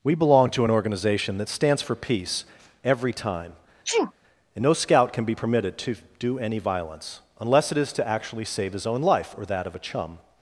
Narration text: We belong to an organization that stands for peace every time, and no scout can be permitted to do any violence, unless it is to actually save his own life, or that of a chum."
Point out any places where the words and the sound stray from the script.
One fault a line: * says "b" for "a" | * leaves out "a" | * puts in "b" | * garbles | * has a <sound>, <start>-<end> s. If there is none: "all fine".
* has a sneeze, 3.8-4.1 s